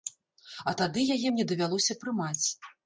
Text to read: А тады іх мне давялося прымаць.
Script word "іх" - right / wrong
wrong